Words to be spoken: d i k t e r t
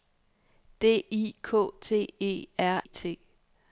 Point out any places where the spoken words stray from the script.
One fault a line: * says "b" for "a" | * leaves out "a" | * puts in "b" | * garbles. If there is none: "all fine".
all fine